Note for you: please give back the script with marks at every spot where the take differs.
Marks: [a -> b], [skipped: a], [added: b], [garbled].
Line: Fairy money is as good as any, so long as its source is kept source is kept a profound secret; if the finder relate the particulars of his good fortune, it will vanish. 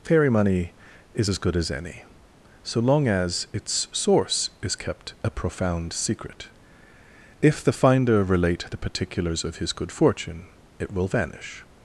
Fairy money is as good as any, so long as its source is kept [skipped: source is kept] a profound secret; if the finder relate the particulars of his good fortune, it will vanish.